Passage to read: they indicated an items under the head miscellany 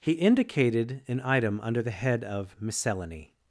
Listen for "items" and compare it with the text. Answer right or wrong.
wrong